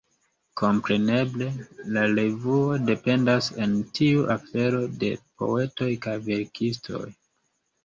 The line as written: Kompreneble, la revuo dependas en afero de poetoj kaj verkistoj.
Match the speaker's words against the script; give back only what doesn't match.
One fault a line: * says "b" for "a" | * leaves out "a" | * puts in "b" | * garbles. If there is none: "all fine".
* puts in "tiu"